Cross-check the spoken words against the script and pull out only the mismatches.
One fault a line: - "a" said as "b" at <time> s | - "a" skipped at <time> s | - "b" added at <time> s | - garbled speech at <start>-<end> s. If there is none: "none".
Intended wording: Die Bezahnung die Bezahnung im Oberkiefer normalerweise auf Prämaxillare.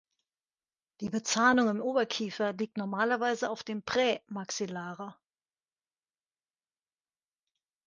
- "die Bezahnung" skipped at 1.7 s
- "liegt" added at 2.5 s
- "dem" added at 3.6 s